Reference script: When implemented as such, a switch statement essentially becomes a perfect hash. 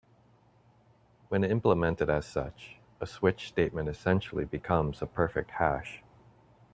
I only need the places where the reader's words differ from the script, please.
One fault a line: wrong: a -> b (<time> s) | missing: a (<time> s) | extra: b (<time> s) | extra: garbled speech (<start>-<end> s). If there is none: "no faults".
no faults